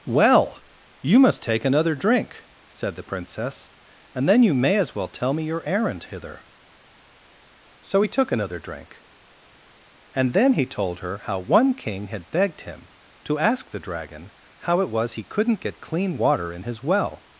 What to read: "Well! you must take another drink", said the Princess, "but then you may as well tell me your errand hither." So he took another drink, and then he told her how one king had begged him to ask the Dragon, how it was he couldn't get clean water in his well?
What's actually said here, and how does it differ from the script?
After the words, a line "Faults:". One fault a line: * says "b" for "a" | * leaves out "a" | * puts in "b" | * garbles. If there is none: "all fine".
"Well! you must take another drink", said the Princess, "and then you may as well tell me your errand hither." So he took another drink, and then he told her how one king had begged him to ask the Dragon, how it was he couldn't get clean water in his well?
Faults:
* says "and" for "but"